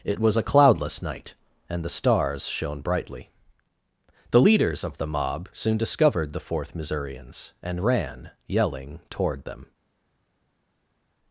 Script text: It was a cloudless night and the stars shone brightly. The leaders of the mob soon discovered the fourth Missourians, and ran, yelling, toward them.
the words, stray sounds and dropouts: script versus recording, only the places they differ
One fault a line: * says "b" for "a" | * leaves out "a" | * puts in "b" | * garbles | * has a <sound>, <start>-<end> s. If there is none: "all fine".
all fine